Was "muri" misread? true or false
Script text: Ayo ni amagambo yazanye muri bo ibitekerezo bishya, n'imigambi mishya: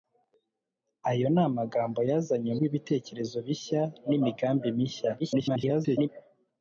true